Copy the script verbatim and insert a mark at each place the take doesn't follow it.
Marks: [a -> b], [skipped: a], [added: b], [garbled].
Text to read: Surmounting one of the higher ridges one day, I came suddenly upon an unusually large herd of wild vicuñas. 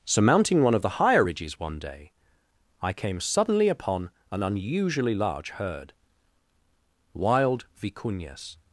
Surmounting one of the higher ridges one day, I came suddenly upon an unusually large herd [skipped: of] wild vicuñas.